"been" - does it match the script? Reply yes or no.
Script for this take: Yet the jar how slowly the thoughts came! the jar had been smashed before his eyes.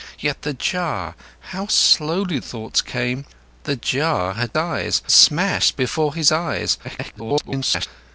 no